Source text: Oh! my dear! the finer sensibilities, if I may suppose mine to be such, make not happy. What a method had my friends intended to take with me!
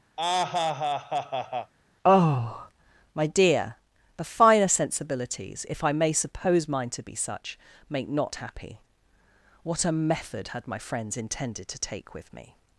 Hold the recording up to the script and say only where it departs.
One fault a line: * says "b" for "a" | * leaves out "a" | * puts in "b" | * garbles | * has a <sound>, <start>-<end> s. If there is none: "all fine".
* has a laugh, 0.2-1.7 s